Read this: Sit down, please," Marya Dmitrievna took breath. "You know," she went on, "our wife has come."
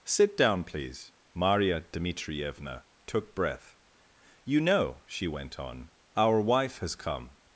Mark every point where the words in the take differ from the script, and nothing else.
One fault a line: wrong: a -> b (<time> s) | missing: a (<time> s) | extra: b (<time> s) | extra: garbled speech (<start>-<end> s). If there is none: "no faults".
no faults